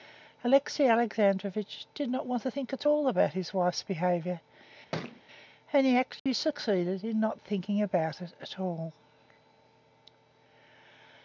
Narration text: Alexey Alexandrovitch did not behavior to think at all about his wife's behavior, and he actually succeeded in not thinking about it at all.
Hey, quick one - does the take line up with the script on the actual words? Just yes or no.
no